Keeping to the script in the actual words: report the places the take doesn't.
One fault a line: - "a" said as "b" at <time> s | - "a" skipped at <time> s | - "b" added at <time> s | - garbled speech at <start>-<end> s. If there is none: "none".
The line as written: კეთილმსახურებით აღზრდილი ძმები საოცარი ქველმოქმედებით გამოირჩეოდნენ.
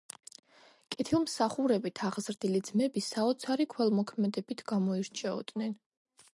none